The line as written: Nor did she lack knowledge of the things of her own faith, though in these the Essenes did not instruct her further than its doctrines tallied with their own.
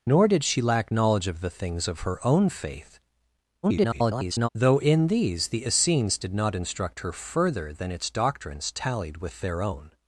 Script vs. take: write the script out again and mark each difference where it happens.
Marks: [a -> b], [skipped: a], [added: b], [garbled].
Nor did she lack knowledge of the things of her own faith, [garbled] though in these the Essenes did not instruct her further than its doctrines tallied with their own.